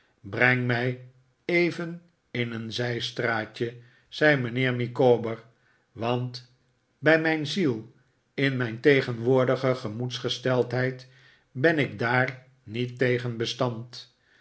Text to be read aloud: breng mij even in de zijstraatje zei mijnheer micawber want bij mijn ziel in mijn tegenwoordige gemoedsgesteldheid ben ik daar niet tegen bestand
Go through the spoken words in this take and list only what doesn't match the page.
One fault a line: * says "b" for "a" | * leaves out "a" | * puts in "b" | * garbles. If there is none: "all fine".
* says "een" for "de"